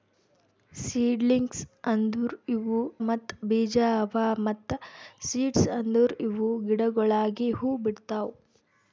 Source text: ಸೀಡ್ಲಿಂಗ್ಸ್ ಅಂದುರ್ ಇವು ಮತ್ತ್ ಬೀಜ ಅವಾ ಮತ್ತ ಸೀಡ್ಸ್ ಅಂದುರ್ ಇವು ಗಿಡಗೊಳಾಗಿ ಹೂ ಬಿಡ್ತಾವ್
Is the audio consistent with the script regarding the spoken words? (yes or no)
yes